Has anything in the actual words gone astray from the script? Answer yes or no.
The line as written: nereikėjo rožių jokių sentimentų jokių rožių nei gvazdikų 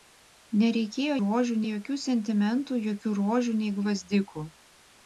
no